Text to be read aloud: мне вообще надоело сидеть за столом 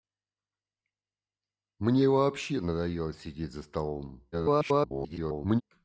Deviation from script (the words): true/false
true